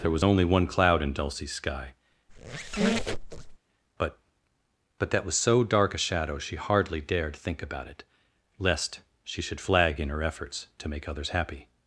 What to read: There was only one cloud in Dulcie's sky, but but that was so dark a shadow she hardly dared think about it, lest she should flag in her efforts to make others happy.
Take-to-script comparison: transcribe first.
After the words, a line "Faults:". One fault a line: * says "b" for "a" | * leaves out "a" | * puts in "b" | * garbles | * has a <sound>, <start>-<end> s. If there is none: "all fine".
There was only one cloud in Dulcie's sky, but but that was so dark a shadow she hardly dared think about it, lest she should flag in her efforts to make others happy.
Faults:
* has a squeak, 2.3-3.6 s